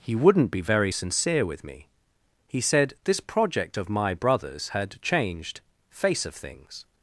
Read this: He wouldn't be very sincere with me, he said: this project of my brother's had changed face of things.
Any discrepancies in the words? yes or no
no